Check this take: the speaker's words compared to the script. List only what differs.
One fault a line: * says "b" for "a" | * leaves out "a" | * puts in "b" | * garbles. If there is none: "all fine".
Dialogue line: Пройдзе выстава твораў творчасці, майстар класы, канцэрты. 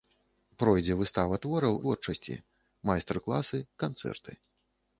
all fine